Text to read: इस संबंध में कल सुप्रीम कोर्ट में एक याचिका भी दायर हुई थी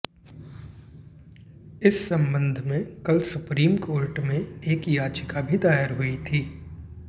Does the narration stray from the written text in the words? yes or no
no